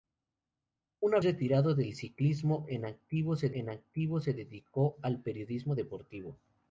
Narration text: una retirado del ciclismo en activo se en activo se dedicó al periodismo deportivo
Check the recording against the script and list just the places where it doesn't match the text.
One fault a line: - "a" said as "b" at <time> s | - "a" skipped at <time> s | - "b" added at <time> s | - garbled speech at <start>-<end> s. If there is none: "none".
none